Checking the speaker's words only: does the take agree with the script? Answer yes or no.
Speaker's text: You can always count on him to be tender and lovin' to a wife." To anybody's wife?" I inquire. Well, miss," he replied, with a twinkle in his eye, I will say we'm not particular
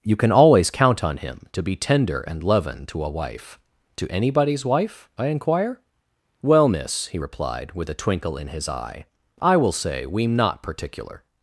yes